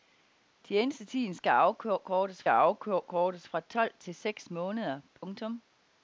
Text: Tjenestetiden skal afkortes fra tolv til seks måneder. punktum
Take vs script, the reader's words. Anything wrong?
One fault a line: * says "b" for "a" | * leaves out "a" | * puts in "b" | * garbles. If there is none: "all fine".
* puts in "afkortes"